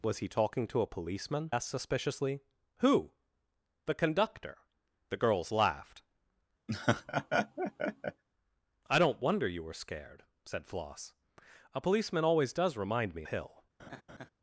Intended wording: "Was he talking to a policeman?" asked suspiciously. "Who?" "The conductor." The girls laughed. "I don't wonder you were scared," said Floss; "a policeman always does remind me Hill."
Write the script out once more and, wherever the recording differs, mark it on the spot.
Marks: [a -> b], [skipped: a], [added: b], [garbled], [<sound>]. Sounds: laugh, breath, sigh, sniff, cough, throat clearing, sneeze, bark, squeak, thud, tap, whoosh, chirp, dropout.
"Was he talking to a policeman?" asked suspiciously. "Who?" "The conductor." The girls laughed. [laugh] "I don't wonder you were scared," said Floss; "a policeman always does remind me Hill." [laugh]